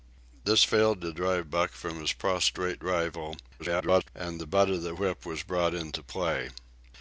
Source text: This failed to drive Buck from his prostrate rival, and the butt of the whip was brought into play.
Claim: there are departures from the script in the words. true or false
true